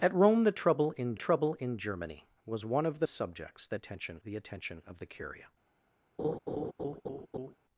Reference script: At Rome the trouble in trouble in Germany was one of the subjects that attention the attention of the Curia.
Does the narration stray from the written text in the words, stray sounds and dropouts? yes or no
yes